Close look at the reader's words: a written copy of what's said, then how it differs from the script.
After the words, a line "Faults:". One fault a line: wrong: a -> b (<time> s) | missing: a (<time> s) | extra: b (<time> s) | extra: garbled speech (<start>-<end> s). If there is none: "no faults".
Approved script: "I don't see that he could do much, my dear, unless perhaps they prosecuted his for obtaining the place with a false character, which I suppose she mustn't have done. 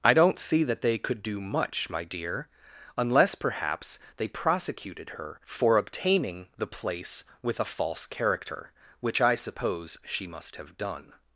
"I don't see that they could do much, my dear, unless perhaps they prosecuted her for obtaining the place with a false character, which I suppose she must have done.
Faults:
wrong: he -> they (0.8 s)
wrong: his -> her (5.1 s)
wrong: mustn't -> must (10.3 s)